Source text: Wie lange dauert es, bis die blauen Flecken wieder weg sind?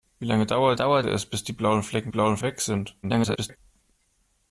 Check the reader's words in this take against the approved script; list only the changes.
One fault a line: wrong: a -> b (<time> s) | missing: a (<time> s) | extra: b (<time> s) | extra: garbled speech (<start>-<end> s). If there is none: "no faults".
extra: dauert (0.8 s)
wrong: wieder -> blauen (2.1 s)
extra: garbled speech (3.0-3.6 s)